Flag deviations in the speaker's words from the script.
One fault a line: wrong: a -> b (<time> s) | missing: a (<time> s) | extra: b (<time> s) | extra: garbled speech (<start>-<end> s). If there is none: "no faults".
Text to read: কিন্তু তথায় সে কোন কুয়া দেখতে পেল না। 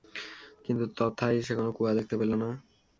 no faults